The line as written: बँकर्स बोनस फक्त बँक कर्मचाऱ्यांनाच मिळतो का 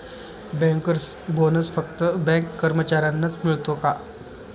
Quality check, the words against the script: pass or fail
pass